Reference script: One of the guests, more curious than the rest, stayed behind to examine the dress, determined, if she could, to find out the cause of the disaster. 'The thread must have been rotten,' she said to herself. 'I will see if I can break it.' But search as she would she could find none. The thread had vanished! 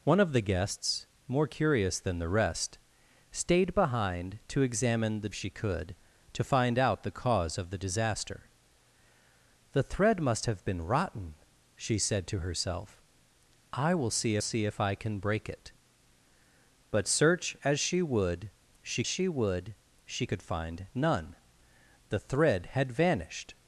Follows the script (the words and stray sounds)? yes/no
no